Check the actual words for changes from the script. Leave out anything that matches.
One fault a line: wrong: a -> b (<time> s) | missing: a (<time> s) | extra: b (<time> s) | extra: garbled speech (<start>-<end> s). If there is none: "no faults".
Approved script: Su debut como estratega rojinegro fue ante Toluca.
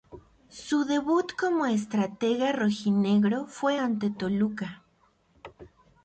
no faults